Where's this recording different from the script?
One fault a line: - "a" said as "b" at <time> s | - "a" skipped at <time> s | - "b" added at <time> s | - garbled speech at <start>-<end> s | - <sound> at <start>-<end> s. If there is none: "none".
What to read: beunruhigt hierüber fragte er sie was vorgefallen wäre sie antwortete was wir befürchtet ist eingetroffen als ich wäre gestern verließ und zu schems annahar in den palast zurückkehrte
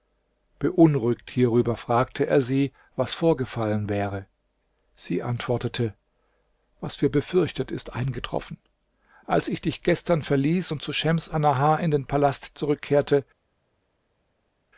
- "wäre" said as "dich" at 9.6 s